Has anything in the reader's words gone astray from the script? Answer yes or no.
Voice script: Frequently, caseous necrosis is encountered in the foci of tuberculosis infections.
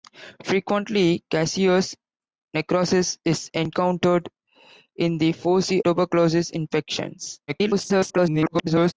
yes